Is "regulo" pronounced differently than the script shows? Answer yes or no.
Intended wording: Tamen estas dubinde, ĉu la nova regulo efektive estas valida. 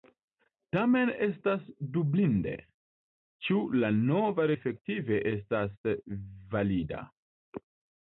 yes